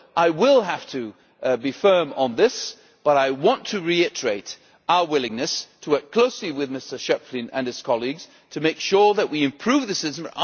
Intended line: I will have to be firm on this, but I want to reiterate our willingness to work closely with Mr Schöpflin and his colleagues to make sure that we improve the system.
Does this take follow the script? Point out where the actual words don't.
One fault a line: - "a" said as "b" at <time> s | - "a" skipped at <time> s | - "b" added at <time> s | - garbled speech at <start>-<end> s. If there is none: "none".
none